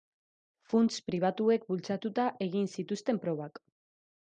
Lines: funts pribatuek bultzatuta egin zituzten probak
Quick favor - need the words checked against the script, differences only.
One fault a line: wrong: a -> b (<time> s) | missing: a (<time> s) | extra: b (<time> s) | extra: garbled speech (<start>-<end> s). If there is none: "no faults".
no faults